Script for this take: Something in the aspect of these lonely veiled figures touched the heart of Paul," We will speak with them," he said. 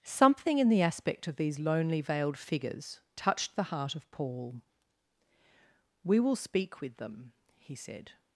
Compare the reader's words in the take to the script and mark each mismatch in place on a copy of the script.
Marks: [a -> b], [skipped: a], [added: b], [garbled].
Something in the aspect of these lonely veiled figures touched the heart of Paul," We will speak with them," he said.